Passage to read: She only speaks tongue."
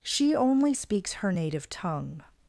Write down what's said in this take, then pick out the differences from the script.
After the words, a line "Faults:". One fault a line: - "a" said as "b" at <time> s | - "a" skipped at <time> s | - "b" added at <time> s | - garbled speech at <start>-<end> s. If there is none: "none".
She only speaks her native tongue."
Faults:
- "her native" added at 1.1 s